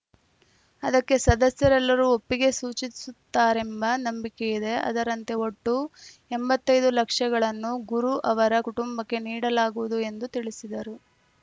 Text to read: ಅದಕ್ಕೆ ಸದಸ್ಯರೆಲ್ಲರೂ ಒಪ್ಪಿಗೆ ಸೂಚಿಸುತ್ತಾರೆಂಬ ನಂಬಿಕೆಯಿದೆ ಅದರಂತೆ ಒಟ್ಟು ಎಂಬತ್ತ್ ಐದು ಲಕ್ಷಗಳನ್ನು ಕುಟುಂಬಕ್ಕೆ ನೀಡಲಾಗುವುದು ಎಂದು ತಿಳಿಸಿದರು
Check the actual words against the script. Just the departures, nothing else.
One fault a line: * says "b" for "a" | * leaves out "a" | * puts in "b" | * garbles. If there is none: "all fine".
* puts in "ಗುರು ಅವರ"